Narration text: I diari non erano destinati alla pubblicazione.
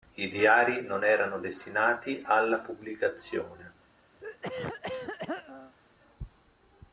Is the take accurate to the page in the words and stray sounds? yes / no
no